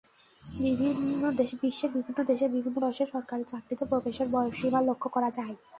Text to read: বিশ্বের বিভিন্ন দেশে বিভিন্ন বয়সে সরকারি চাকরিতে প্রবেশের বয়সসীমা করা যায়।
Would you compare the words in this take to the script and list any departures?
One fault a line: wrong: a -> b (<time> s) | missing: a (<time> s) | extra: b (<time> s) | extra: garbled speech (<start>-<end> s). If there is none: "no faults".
extra: লক্ষ (4.9 s)